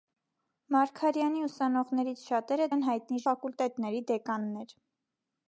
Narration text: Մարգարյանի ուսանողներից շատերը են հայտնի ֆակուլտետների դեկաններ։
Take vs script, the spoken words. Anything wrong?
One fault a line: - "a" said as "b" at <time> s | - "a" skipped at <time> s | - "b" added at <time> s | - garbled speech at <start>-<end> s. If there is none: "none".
none